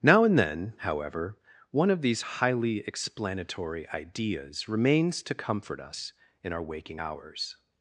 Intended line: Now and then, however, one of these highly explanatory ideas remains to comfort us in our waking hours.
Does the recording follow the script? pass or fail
pass